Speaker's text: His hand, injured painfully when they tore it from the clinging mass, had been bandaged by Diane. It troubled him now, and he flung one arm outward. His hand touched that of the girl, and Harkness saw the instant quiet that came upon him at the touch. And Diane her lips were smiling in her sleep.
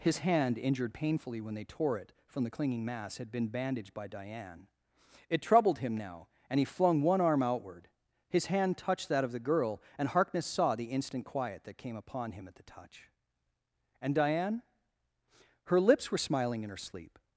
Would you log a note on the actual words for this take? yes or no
no